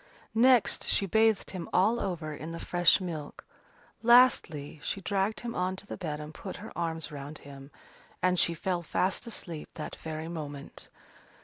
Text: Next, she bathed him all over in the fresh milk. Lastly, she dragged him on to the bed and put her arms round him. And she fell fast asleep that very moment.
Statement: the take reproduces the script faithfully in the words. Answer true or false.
true